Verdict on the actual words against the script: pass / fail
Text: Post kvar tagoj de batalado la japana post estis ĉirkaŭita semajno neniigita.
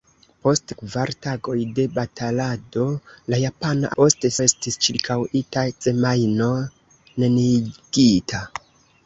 pass